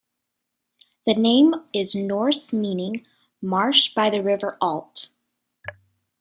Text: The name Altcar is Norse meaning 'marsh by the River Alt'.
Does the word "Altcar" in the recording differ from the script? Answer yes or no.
yes